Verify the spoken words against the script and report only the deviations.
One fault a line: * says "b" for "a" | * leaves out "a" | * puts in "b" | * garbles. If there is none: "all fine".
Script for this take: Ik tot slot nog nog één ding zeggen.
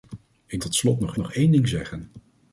all fine